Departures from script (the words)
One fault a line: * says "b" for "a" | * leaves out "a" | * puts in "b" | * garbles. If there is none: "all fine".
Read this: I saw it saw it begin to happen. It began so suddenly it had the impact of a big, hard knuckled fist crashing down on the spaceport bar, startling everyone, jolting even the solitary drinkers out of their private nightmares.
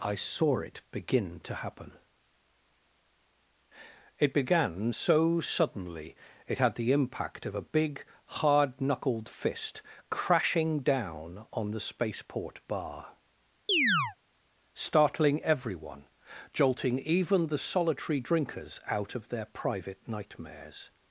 * leaves out "saw it"